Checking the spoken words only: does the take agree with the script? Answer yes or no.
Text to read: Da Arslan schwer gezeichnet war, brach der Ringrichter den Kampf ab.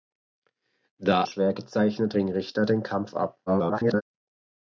no